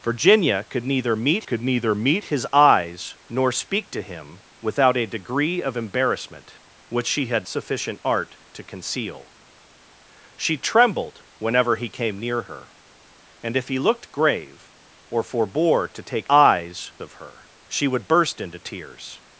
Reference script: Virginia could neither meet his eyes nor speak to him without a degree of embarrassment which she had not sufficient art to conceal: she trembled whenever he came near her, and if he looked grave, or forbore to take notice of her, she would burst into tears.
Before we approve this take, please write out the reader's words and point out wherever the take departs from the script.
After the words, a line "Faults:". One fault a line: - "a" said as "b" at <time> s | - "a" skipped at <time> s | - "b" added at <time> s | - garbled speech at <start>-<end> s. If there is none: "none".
Virginia could neither meet could neither meet his eyes nor speak to him without a degree of embarrassment which she had sufficient art to conceal: she trembled whenever he came near her, and if he looked grave, or forbore to take eyes of her, she would burst into tears.
Faults:
- "could neither meet" added at 1.4 s
- "not" skipped at 7.5 s
- "notice" said as "eyes" at 16.3 s